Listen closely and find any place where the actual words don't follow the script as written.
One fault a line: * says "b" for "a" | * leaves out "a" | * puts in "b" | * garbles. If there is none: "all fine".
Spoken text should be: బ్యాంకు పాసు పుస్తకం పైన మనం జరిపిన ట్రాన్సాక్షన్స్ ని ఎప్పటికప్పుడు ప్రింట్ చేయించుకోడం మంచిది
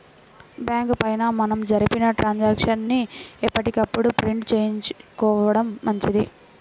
* leaves out "పాసు పుస్తకం"